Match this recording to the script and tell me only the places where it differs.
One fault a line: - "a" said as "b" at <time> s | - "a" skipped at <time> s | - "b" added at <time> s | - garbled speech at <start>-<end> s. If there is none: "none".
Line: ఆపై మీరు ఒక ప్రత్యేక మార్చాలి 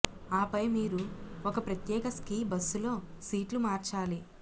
- "స్కీ బస్సులో సీట్లు" added at 2.2 s